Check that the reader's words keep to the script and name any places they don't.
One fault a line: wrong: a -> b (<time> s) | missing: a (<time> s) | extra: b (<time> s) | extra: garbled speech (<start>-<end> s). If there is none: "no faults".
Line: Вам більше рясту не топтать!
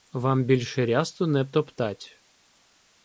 no faults